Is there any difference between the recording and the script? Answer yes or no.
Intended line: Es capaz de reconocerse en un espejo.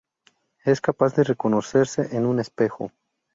no